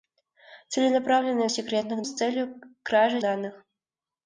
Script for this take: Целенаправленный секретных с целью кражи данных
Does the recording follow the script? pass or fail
pass